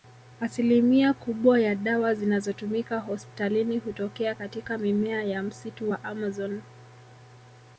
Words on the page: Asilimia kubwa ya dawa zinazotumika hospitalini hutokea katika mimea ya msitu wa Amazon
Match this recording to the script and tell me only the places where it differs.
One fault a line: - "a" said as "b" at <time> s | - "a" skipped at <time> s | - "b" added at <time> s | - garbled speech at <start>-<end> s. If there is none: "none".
none